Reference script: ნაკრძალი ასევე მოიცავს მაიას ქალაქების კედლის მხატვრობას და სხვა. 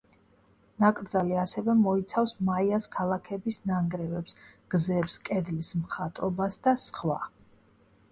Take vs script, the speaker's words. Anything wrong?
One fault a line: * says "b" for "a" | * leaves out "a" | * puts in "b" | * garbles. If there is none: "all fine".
* puts in "ნანგრევებს გზებს"